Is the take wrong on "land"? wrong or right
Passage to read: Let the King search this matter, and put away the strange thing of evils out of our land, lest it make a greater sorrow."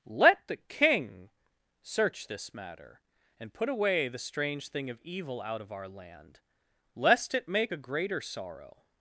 right